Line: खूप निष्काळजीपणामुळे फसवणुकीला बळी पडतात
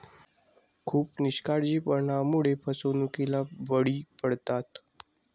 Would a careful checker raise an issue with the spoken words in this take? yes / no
no